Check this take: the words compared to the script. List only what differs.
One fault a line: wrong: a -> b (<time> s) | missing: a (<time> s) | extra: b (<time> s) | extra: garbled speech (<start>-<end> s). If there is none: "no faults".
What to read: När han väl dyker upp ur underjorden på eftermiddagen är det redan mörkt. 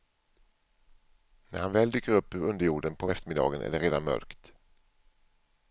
no faults